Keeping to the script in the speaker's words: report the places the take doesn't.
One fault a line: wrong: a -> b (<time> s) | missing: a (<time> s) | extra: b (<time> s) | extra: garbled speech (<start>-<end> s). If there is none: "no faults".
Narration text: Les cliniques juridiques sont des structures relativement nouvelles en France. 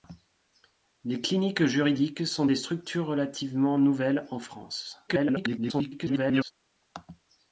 extra: garbled speech (5.1-6.5 s)